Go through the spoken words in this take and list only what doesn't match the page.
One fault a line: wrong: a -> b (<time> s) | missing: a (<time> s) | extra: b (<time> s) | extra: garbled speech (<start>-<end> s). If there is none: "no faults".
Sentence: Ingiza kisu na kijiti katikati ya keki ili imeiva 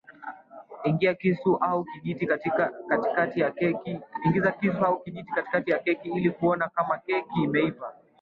wrong: na -> au (1.6 s)
extra: kuona kama keki (6.3 s)